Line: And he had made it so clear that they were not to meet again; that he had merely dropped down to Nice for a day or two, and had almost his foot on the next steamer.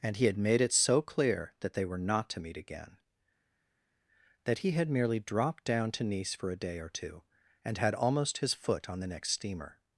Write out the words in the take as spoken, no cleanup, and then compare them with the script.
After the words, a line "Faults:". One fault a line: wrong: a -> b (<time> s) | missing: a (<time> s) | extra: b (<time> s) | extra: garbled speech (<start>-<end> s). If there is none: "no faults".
And he had made it so clear that they were not to meet again; that he had merely dropped down to Nice for a day or two, and had almost his foot on the next steamer.
Faults:
no faults